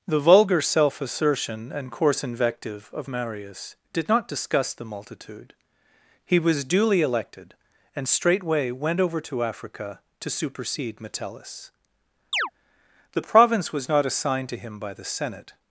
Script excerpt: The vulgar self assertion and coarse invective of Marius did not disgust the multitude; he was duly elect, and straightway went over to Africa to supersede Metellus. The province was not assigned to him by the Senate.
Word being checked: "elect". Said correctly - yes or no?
no